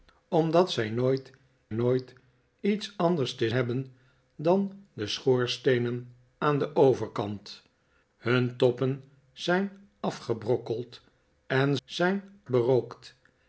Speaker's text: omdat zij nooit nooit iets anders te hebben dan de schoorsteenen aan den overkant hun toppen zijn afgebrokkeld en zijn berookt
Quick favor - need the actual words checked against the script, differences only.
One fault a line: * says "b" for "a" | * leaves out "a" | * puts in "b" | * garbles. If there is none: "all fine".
all fine